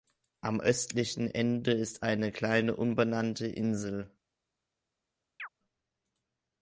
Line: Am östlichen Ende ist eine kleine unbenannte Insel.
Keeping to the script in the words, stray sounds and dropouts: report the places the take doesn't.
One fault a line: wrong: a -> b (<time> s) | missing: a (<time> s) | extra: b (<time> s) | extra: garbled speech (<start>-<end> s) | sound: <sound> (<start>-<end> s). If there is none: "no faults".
sound: chirp (5.4-5.5 s)